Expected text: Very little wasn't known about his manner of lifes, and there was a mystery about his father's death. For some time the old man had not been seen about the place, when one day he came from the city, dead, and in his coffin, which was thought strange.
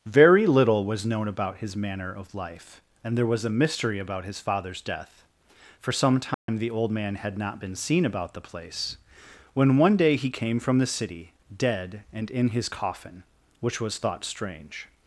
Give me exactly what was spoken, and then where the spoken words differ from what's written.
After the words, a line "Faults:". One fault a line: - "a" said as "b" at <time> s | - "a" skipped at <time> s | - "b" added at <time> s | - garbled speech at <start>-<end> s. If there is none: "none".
Very little was known about his manner of life, and there was a mystery about his father's death. For some time the old man had not been seen about the place, when one day he came from the city, dead, and in his coffin, which was thought strange.
Faults:
- "wasn't" said as "was" at 0.8 s
- "lifes" said as "life" at 2.3 s